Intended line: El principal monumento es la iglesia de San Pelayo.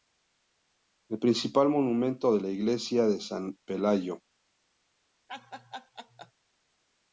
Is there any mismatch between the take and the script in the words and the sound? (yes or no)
yes